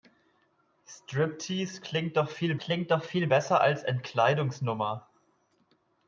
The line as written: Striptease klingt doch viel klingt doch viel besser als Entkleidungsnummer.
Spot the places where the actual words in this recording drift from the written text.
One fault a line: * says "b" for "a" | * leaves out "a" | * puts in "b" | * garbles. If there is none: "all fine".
all fine